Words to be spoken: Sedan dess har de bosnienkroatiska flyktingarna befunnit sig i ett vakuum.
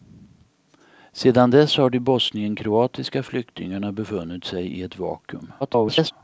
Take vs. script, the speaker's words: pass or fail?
fail